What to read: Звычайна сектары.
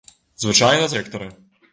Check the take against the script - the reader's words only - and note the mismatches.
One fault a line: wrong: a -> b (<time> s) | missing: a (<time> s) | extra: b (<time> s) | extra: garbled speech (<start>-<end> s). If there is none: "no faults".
no faults